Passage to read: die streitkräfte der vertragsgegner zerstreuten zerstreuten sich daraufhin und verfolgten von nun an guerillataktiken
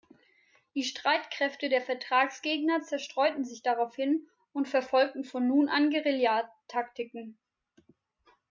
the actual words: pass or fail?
fail